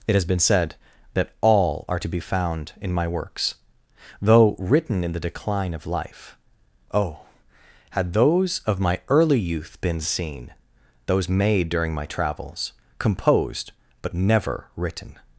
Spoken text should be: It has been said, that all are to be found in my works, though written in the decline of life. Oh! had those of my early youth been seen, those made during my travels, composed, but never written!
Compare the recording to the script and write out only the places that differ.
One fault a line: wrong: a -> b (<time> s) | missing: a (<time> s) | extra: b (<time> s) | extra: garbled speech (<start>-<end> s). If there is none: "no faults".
no faults